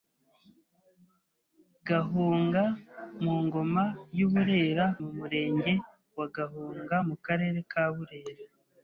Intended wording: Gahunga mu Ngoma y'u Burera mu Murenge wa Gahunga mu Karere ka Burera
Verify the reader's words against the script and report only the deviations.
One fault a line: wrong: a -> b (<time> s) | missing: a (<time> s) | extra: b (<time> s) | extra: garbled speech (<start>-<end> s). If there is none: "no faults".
no faults